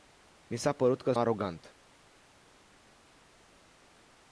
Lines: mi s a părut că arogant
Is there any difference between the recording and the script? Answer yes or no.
no